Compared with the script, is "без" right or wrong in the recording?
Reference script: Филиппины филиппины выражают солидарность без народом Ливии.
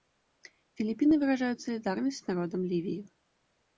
wrong